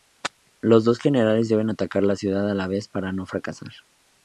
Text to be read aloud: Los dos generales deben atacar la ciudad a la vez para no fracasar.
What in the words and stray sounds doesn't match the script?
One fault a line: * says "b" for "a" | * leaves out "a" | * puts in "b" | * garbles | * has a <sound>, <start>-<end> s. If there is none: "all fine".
all fine